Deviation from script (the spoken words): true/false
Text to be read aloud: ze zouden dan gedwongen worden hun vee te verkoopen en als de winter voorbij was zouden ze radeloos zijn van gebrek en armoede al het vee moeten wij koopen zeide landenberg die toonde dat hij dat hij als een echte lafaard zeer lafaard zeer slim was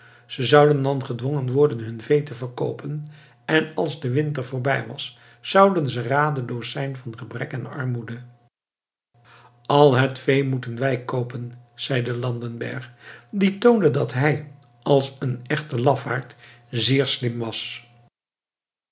true